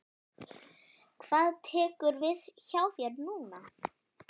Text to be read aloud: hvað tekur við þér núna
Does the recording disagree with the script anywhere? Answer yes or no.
yes